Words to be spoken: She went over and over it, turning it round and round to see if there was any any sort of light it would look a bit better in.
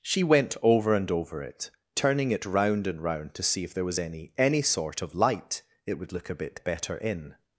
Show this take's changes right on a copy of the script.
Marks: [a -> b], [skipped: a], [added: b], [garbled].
She went over and over it, turning it round and round to see if there was any any sort of light it would look a bit better in.